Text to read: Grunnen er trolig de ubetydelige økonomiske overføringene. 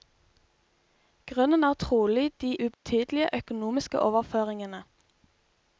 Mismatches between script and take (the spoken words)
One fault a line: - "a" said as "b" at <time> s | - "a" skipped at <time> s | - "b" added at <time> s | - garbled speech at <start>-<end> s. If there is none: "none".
none